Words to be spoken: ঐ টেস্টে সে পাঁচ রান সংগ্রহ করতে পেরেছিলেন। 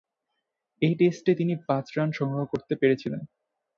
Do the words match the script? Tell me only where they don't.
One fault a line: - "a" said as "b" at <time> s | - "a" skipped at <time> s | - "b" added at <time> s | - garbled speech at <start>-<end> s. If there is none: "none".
- "সে" said as "তিনি" at 1.3 s